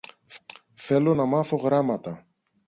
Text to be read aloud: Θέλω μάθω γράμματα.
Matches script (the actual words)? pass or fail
fail